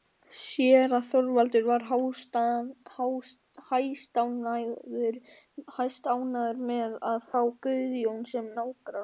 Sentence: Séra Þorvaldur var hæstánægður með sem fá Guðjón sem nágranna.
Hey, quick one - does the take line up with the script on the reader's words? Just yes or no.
no